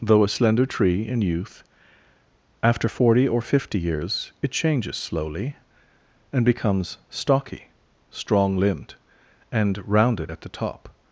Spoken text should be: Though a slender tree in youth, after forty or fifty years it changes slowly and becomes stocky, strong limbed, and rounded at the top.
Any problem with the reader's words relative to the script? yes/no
no